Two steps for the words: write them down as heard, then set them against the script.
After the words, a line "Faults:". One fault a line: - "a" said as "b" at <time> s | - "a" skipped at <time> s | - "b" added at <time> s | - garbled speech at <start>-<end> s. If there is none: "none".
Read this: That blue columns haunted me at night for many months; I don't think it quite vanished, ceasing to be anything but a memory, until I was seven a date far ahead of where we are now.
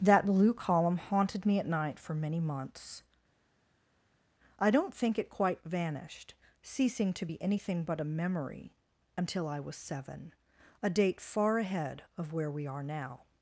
That blue column haunted me at night for many months; I don't think it quite vanished, ceasing to be anything but a memory, until I was seven a date far ahead of where we are now.
Faults:
- "columns" said as "column" at 0.6 s